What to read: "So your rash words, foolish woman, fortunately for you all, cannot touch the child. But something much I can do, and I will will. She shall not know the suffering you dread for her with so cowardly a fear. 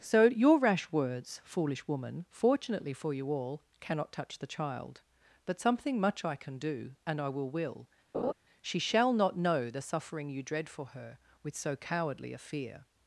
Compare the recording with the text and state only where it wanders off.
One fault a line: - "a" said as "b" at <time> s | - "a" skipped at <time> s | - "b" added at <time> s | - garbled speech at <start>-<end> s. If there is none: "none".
none